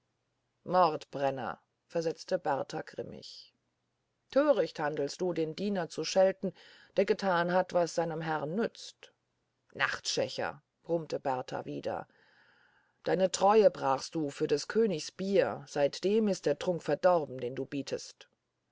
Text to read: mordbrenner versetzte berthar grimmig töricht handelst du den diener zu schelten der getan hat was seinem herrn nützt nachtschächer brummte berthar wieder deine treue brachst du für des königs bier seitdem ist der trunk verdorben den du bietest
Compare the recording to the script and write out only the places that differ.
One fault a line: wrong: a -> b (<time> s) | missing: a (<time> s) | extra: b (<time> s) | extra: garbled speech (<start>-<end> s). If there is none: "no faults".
no faults